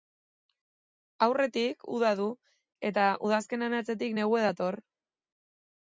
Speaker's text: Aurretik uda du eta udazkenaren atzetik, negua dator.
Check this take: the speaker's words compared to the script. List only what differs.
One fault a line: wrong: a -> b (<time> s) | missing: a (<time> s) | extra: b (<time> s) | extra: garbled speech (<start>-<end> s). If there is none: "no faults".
no faults